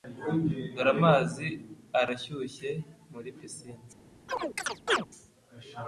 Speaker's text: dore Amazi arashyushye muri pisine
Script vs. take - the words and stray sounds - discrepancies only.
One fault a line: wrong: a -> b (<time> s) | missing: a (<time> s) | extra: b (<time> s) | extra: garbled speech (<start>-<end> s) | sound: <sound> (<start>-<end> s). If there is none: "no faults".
sound: chirp (4.3-5.1 s)